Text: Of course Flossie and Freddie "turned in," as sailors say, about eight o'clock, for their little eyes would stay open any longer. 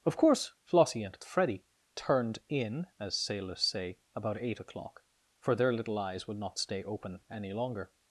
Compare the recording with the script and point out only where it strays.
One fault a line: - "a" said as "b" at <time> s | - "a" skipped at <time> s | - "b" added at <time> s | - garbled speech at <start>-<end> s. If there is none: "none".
- "not" added at 6.4 s